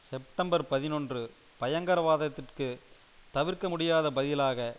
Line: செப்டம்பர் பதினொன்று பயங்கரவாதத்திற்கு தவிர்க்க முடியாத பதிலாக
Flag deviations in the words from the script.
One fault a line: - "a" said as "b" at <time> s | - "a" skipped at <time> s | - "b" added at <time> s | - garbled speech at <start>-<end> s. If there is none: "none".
none